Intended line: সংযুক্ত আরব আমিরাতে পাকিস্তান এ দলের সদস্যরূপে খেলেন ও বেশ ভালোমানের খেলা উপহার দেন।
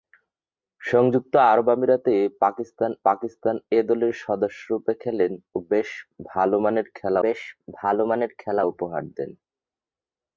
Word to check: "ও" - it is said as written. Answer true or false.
true